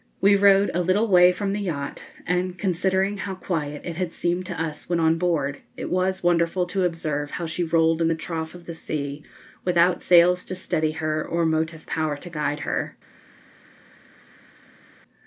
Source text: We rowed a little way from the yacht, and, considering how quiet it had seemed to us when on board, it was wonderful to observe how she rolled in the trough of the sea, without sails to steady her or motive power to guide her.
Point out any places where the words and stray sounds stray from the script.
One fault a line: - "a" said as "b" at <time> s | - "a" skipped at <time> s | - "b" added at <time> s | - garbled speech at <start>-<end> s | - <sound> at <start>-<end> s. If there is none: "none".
none